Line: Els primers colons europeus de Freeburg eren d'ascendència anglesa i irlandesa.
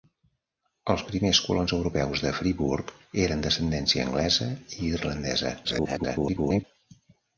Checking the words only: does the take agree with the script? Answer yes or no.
no